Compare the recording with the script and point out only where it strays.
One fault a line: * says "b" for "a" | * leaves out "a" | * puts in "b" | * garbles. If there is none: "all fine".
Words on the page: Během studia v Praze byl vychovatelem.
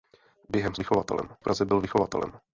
* says "vychovatelem" for "studia"